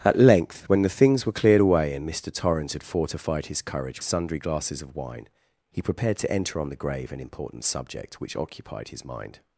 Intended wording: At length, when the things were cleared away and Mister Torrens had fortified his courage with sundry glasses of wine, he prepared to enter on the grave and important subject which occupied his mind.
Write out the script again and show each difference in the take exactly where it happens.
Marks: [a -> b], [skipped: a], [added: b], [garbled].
At length, when the things were cleared away and Mister Torrens had fortified his courage [skipped: with] sundry glasses of wine, he prepared to enter on the grave and important subject which occupied his mind.